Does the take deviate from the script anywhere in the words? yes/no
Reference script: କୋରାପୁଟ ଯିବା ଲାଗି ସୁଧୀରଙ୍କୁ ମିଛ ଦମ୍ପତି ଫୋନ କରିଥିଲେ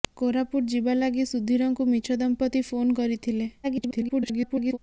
yes